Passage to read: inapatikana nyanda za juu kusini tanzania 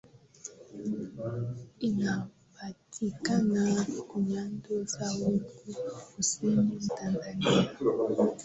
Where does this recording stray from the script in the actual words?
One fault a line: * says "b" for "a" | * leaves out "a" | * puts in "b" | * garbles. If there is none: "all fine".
all fine